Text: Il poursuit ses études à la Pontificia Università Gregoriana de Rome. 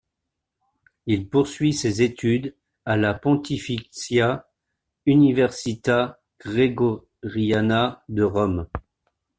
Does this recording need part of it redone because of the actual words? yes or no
no